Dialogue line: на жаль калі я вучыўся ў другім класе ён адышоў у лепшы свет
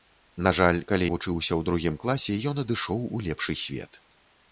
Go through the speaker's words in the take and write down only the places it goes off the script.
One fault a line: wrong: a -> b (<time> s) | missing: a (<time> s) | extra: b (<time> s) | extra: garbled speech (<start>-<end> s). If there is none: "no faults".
missing: я (1.1 s)